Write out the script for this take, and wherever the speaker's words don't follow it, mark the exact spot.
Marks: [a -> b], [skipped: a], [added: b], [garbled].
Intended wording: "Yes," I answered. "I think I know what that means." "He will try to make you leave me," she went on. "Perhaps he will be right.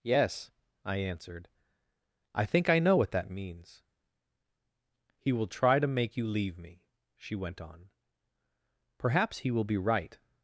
"Yes," I answered. "I think I know what that means." "He will try to make you leave me," she went on. "Perhaps he will be right.